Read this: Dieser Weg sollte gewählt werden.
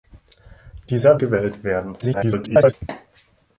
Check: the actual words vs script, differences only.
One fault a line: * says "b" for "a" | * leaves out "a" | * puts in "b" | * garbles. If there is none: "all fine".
* leaves out "Weg sollte"
* garbles